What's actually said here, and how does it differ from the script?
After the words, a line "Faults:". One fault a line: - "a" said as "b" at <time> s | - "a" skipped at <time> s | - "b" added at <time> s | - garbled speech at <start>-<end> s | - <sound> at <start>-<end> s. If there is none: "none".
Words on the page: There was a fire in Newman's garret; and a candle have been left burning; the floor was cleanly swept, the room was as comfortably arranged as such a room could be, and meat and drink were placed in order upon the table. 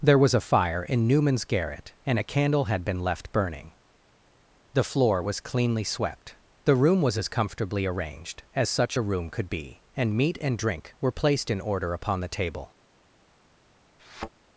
There was a fire in Newman's garret; and a candle had been left burning; the floor was cleanly swept, the room was as comfortably arranged as such a room could be, and meat and drink were placed in order upon the table.
Faults:
- "have" said as "had" at 2.6 s
- thud at 14.0-14.3 s